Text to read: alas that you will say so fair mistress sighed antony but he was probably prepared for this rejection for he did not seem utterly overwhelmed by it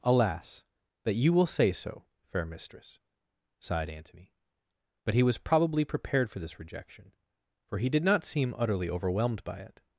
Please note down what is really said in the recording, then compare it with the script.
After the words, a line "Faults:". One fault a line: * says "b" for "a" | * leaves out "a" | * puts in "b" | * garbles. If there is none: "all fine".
alas that you will say so fair mistress sighed antony but he was probably prepared for this rejection for he did not seem utterly overwhelmed by it
Faults:
all fine